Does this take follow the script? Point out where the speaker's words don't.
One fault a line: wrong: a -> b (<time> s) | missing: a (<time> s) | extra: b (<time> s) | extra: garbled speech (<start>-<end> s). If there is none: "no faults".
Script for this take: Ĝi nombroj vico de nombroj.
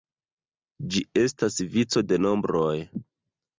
wrong: nombroj -> estas (1.2 s)